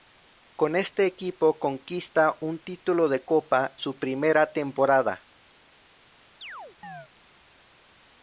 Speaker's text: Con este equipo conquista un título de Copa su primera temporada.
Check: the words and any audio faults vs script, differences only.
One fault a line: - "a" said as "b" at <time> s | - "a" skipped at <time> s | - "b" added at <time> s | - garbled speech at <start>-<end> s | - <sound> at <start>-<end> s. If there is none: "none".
- chirp at 6.4-7.1 s